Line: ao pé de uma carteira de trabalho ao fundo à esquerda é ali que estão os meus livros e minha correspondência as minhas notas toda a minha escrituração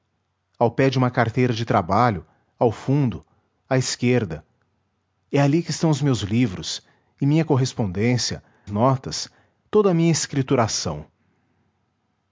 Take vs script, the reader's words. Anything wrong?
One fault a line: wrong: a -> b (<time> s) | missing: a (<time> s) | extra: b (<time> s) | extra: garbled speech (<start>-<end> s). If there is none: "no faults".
missing: as minhas (8.4 s)